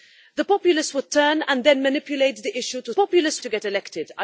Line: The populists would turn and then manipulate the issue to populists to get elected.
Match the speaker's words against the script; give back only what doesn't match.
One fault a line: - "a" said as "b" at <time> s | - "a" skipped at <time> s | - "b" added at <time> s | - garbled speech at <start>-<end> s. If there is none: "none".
none